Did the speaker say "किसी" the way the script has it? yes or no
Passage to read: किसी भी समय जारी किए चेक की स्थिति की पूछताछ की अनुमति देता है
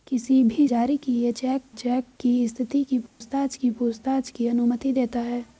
yes